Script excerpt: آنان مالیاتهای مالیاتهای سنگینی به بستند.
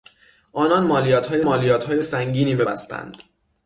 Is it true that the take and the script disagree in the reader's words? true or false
false